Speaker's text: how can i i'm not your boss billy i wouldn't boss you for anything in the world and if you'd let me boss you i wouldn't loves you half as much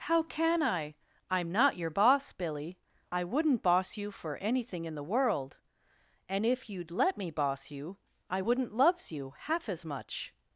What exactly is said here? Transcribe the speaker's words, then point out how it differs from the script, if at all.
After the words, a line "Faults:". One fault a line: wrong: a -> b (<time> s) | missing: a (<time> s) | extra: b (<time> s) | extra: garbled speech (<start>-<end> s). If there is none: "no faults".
how can i i'm not your boss billy i wouldn't boss you for anything in the world and if you'd let me boss you i wouldn't loves you half as much
Faults:
no faults